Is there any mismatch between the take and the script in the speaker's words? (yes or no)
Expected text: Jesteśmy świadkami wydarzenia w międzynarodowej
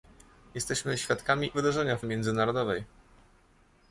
no